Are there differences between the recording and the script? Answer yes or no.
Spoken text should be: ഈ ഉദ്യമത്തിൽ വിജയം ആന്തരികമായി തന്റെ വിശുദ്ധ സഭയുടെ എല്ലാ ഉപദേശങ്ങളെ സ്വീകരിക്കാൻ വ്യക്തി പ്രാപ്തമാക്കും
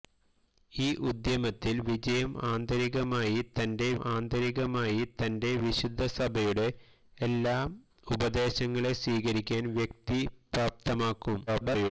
yes